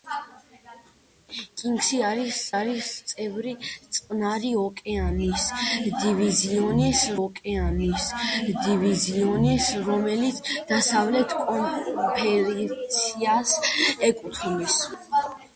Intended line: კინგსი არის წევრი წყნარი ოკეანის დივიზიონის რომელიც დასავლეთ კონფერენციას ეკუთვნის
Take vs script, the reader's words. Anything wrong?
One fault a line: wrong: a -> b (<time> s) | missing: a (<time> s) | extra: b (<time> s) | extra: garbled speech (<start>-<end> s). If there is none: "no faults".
extra: არის (2.6 s)
extra: ოკეანის დივიზიონის (7.2 s)